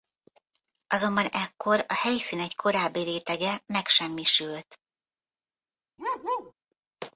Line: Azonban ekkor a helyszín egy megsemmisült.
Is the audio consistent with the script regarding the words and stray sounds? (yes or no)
no